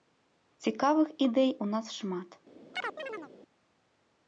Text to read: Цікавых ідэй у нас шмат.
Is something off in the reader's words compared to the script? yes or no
no